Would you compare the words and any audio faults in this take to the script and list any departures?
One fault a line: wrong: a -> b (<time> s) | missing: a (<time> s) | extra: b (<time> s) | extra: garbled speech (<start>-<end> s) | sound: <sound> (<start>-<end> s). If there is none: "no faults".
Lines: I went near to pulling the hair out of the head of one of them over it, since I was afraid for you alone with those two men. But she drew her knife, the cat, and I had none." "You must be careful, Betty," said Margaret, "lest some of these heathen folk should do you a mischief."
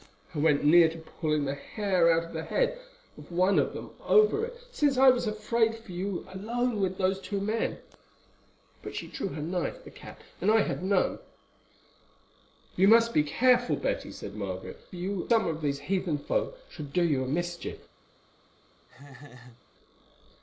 wrong: lest -> you (15.0 s)
sound: laugh (18.9-19.6 s)